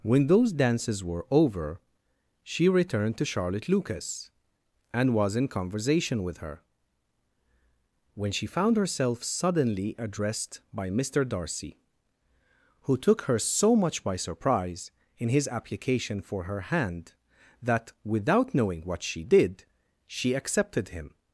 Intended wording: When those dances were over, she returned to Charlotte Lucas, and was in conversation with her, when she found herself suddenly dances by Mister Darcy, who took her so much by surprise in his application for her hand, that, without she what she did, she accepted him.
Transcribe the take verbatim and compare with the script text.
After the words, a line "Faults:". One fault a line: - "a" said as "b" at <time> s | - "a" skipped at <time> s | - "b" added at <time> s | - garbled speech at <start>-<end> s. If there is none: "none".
When those dances were over, she returned to Charlotte Lucas, and was in conversation with her, when she found herself suddenly addressed by Mister Darcy, who took her so much by surprise in his application for her hand, that, without knowing what she did, she accepted him.
Faults:
- "dances" said as "addressed" at 10.0 s
- "she" said as "knowing" at 18.5 s